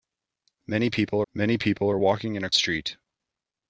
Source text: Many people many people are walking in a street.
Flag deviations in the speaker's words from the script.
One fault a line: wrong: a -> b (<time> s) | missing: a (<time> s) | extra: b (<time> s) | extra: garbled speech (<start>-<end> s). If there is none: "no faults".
no faults